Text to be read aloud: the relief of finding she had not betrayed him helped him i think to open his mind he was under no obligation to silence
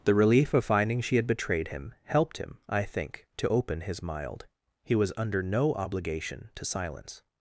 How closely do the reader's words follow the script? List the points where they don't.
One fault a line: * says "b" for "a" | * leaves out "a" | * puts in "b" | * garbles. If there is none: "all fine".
* leaves out "not"
* says "mild" for "mind"